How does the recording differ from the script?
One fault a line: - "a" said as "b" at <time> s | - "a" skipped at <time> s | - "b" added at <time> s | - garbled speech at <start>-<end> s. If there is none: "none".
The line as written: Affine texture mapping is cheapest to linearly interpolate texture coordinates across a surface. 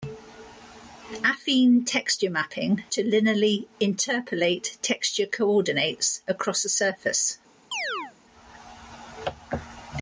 - "is cheapest" skipped at 2.8 s